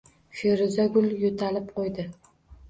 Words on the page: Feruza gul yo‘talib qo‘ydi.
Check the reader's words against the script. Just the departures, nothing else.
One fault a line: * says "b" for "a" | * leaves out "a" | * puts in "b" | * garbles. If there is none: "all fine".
all fine